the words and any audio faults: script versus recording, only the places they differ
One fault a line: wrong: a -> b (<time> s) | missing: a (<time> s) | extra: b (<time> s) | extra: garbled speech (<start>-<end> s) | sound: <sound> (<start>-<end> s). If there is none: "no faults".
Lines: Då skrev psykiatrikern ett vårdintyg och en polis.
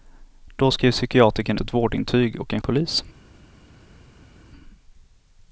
no faults